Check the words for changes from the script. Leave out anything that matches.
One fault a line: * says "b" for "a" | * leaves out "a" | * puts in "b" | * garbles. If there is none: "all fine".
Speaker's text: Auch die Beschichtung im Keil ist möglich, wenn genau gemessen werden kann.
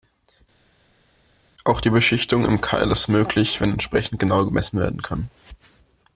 * puts in "entsprechend"